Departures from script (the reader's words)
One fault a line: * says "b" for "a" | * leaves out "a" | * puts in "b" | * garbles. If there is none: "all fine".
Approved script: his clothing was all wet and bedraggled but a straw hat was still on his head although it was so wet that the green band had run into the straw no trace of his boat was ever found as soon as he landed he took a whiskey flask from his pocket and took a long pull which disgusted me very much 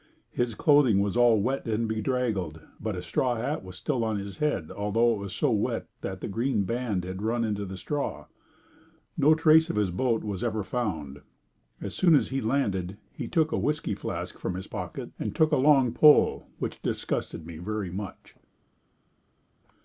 all fine